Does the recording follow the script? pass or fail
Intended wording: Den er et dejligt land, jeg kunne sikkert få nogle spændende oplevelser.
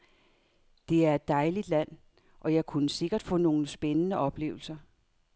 fail